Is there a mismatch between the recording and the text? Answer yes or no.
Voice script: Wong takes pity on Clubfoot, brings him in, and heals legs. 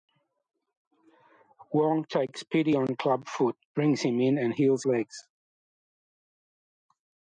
no